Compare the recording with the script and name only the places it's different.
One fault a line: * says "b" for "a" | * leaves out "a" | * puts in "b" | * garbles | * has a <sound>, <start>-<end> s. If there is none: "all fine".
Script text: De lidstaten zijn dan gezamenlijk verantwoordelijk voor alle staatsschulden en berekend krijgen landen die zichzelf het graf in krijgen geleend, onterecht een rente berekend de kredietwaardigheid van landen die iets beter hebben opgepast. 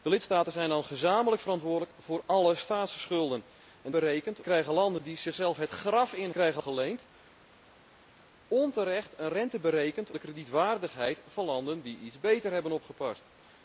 all fine